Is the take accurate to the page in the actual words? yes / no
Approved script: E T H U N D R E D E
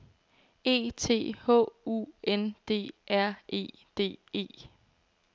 yes